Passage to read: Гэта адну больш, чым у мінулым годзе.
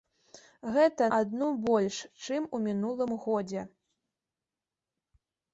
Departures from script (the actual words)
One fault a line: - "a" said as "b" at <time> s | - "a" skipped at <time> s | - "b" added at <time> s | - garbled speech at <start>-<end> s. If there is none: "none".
none